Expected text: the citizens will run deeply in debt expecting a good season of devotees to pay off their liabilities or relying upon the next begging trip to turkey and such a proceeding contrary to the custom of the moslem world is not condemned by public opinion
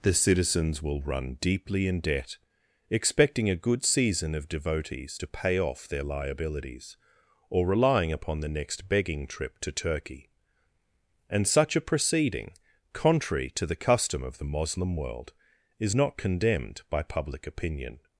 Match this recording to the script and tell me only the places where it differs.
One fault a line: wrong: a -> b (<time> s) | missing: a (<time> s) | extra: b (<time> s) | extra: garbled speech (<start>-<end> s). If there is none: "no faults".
no faults